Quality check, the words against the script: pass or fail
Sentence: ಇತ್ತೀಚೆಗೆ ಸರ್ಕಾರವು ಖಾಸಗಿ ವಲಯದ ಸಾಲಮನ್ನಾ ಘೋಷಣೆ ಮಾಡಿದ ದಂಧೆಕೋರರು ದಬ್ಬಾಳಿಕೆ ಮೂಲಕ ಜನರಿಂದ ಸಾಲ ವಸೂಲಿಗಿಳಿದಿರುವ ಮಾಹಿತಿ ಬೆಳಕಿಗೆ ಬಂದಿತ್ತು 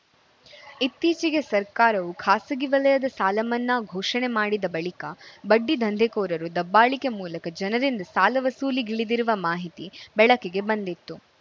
fail